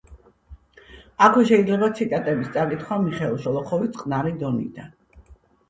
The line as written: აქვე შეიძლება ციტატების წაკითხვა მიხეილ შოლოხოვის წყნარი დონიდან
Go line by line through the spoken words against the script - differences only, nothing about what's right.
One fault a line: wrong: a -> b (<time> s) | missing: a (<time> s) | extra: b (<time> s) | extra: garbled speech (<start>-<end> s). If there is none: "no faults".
no faults